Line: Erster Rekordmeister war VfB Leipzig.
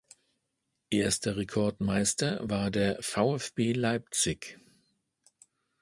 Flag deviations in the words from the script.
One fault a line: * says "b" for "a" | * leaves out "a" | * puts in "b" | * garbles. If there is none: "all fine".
* puts in "der"